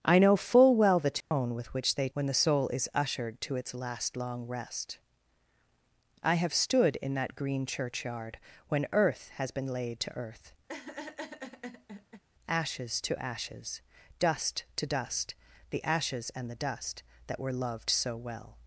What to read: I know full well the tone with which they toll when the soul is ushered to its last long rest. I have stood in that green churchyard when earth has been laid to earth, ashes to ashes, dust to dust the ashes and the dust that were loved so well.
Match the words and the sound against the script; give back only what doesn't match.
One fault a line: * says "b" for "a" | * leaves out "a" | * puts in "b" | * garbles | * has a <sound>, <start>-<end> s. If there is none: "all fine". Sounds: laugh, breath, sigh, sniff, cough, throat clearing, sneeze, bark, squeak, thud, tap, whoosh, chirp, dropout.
* has a dropout, 1.2-1.3 s
* leaves out "toll"
* has a laugh, 10.7-12.2 s